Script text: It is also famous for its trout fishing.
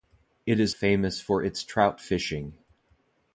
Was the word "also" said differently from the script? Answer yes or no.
yes